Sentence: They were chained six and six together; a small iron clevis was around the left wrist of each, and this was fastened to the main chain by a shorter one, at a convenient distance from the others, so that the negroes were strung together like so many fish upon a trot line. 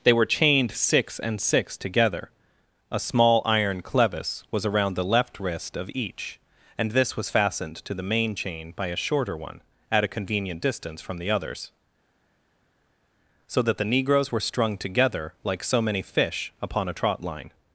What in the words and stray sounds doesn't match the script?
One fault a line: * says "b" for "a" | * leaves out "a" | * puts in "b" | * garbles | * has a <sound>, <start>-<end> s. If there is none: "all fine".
all fine